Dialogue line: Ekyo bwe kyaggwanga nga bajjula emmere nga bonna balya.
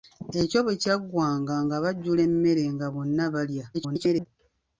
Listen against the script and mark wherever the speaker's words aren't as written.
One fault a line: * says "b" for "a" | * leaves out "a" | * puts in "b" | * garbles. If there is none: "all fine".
* garbles